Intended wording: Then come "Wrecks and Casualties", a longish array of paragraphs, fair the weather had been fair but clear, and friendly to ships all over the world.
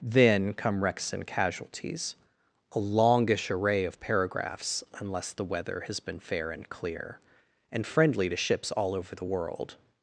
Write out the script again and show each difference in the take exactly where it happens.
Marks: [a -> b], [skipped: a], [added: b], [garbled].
Then come "Wrecks and Casualties", a longish array of paragraphs, [fair -> unless] the weather [had -> has] been fair [but -> and] clear, and friendly to ships all over the world.